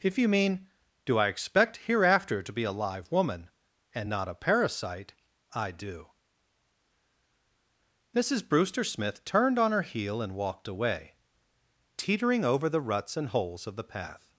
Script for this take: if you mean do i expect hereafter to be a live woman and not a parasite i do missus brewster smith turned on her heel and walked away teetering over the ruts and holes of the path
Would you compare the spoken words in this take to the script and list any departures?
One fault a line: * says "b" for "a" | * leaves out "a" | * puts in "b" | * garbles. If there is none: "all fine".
all fine